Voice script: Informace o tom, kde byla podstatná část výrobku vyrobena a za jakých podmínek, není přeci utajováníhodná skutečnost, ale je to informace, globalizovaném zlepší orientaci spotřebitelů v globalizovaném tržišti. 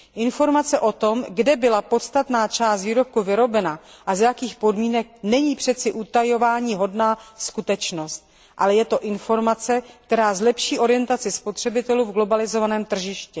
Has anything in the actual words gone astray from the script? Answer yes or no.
yes